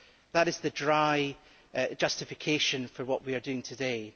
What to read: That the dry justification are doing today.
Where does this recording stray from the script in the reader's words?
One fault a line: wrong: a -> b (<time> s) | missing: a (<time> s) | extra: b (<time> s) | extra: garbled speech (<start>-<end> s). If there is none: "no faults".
extra: is (0.5 s)
extra: for what we (2.9 s)